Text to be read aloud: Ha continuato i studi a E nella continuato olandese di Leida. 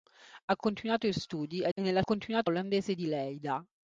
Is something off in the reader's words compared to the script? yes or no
no